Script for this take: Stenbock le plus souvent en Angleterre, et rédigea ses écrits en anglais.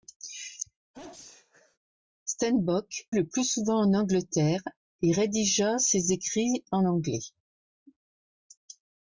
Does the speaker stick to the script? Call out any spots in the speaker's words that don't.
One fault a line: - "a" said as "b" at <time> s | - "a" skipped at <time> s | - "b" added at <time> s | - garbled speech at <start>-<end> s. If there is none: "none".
none